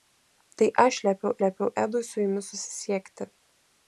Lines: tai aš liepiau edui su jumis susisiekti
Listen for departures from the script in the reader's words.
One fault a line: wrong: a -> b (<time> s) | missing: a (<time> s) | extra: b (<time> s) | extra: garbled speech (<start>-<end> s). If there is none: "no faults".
extra: liepiau (1.4 s)